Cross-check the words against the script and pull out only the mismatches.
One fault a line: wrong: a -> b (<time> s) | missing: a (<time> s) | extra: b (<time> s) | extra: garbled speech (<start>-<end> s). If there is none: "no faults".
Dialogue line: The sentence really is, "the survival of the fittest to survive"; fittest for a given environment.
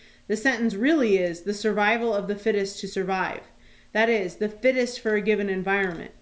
extra: that is the (3.9 s)